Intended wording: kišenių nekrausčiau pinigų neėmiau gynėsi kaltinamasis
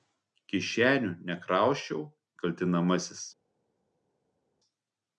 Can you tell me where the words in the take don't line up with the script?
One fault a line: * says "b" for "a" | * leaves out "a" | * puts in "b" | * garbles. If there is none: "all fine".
* leaves out "pinigų neėmiau gynėsi"